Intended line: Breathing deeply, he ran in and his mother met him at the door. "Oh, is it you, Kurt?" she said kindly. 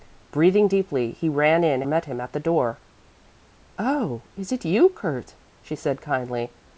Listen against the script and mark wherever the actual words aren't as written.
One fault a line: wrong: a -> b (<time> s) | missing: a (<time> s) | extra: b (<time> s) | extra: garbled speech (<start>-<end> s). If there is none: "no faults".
missing: and his mother (1.8 s)